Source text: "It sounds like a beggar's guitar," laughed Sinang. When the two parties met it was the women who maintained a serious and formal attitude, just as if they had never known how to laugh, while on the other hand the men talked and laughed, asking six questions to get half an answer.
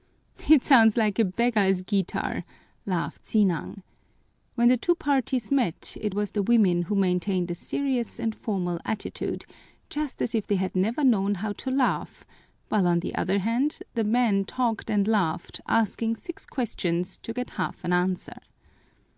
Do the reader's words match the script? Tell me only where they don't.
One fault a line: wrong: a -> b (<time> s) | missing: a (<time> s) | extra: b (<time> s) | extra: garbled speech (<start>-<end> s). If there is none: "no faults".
no faults